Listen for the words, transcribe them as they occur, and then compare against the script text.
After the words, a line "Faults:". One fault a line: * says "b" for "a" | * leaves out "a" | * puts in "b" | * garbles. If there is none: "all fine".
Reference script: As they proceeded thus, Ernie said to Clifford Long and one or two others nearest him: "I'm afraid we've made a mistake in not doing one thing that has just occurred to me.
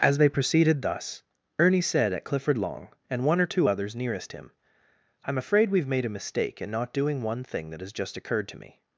As they proceeded thus, Ernie said at Clifford Long and one or two others nearest him: "I'm afraid we've made a mistake in not doing one thing that has just occurred to me.
Faults:
* says "at" for "to"